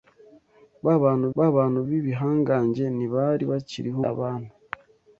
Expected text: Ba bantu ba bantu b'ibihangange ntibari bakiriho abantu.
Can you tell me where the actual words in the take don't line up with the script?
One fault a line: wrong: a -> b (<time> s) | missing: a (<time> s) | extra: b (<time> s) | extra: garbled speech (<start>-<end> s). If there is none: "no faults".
no faults